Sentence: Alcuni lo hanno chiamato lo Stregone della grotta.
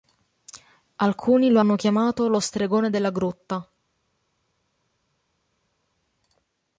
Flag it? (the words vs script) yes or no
no